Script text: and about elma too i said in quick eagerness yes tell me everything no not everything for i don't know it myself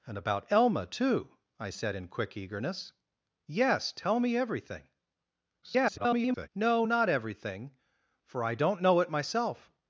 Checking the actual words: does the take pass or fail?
fail